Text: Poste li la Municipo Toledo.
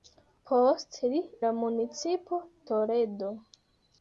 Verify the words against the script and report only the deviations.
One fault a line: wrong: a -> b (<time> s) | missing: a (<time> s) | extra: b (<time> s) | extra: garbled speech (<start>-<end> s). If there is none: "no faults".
no faults